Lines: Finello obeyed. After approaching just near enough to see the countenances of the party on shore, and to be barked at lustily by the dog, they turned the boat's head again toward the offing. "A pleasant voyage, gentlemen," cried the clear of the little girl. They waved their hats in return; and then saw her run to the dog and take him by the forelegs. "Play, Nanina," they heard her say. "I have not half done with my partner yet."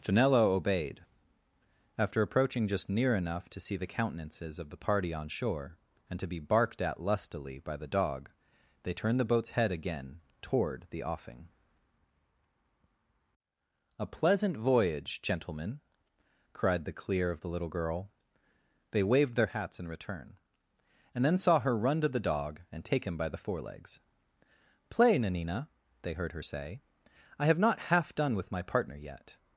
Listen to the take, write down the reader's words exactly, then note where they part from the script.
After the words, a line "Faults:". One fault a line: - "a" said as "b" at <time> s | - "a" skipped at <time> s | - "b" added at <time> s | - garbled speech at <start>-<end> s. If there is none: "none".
Finello obeyed. After approaching just near enough to see the countenances of the party on shore, and to be barked at lustily by the dog, they turned the boat's head again toward the offing. "A pleasant voyage, gentlemen," cried the clear of the little girl. They waved their hats in return; and then saw her run to the dog and take him by the forelegs. "Play, Nanina," they heard her say. "I have not half done with my partner yet."
Faults:
none